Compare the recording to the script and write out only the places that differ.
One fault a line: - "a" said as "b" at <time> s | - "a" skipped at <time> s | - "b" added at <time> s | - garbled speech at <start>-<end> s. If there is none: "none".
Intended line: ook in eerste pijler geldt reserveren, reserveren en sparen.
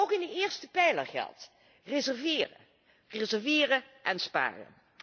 - "de" added at 0.2 s